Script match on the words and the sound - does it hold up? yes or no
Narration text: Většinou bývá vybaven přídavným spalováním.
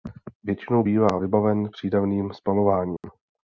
no